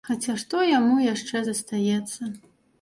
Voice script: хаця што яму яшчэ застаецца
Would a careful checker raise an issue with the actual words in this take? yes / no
no